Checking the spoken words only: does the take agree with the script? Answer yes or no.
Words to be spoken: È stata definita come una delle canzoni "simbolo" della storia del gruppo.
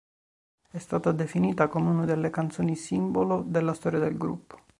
yes